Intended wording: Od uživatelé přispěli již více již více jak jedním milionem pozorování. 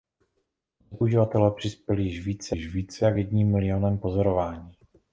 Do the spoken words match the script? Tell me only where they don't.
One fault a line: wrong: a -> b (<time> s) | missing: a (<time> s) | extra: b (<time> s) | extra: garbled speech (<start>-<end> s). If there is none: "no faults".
no faults